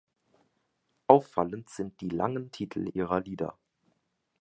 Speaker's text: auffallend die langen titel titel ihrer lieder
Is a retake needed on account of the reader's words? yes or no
yes